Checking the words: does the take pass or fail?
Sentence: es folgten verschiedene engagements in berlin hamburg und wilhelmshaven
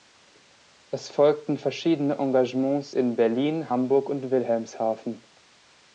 pass